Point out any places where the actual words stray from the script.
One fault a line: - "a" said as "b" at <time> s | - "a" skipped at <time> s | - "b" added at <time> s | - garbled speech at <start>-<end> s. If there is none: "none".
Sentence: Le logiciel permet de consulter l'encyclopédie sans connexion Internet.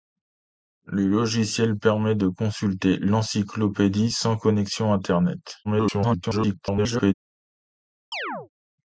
- garbled speech at 5.6-7.1 s